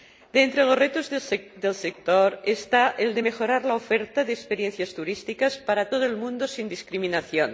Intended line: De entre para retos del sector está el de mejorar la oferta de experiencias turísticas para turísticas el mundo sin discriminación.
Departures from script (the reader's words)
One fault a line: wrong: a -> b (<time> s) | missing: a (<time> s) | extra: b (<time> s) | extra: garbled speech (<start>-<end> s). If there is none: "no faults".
wrong: para -> los (0.6 s)
wrong: turísticas -> todo (5.9 s)